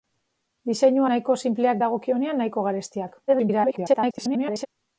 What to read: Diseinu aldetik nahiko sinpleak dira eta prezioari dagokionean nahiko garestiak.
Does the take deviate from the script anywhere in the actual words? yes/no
yes